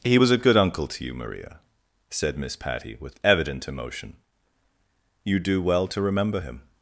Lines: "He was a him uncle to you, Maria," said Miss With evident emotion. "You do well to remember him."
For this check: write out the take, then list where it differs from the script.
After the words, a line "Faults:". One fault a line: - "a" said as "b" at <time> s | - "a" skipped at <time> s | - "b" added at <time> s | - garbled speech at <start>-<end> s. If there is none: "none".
"He was a good uncle to you, Maria," said Miss Patty, with evident emotion. "You do well to remember him."
Faults:
- "him" said as "good" at 0.4 s
- "Patty" added at 2.6 s